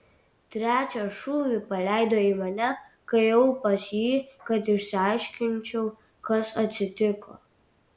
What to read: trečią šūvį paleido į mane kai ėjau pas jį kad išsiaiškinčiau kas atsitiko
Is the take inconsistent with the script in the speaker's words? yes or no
no